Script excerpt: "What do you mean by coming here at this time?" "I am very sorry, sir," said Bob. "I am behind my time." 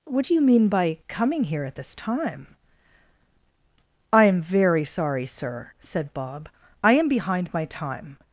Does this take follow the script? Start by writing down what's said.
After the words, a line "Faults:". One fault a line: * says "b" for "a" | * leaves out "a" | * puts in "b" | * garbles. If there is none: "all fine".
"What do you mean by coming here at this time?" "I am very sorry, sir," said Bob. "I am behind my time."
Faults:
all fine